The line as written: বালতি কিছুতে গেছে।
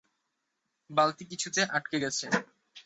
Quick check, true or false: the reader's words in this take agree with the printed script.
false